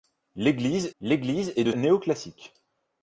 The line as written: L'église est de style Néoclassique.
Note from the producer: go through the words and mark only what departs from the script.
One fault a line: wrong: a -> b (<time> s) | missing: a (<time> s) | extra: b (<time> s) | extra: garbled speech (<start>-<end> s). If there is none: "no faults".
extra: l'église (1.0 s)
missing: style (1.7 s)